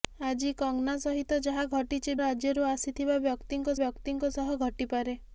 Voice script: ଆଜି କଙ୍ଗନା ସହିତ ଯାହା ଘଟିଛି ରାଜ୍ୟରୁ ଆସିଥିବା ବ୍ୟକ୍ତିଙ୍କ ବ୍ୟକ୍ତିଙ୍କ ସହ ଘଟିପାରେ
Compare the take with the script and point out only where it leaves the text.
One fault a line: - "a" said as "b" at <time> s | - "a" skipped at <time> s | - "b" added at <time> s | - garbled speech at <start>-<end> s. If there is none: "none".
none